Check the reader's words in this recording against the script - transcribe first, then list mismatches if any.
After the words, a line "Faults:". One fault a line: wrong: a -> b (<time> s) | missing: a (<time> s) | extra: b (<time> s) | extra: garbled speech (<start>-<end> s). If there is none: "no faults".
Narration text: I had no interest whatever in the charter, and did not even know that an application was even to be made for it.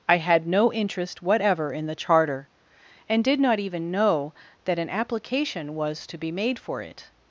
I had no interest whatever in the charter, and did not even know that an application was to be made for it.
Faults:
missing: even (6.1 s)